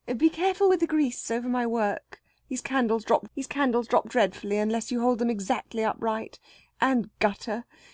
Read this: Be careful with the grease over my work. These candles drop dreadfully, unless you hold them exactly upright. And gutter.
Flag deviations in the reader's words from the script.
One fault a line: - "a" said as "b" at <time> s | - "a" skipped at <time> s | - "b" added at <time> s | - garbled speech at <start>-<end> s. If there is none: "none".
- "these candles drop" added at 3.3 s